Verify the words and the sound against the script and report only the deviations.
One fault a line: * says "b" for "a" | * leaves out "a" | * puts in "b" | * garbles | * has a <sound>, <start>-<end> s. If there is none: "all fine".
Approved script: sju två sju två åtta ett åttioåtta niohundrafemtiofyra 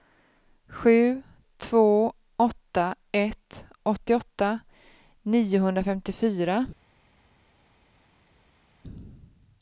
* leaves out "sju två"